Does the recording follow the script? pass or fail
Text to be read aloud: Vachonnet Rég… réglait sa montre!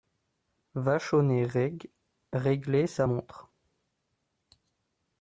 pass